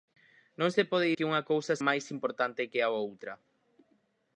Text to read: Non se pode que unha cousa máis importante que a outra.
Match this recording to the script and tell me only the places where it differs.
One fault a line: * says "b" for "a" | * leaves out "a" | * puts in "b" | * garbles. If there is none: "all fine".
all fine